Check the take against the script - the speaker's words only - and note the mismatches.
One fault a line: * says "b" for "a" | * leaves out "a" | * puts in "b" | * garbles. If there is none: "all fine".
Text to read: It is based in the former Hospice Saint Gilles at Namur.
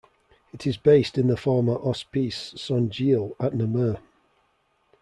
all fine